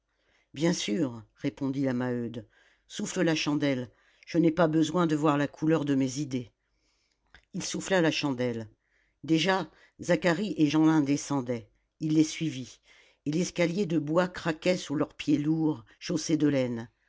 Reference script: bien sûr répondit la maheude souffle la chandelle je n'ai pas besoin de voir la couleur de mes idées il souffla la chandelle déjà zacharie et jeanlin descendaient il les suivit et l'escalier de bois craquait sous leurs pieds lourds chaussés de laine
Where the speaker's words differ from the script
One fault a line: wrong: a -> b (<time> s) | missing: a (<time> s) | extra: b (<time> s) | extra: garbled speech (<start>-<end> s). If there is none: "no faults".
no faults